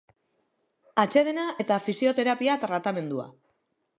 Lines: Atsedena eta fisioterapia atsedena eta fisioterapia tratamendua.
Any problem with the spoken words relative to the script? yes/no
yes